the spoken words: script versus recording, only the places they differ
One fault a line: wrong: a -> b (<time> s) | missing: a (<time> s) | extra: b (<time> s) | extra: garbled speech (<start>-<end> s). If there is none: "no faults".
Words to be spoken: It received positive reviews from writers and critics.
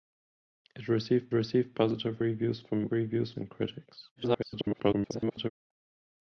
extra: received (1.3 s)
wrong: writers -> reviews (2.9 s)
extra: garbled speech (4.2-5.5 s)